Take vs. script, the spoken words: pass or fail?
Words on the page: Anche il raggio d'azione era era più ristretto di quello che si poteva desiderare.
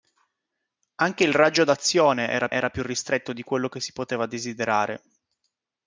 pass